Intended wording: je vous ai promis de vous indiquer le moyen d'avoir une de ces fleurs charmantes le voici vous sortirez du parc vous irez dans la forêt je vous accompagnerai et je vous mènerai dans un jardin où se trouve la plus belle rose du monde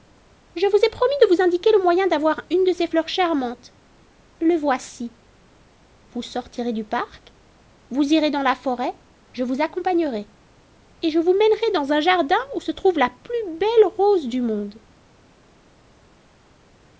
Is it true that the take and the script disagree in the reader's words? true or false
false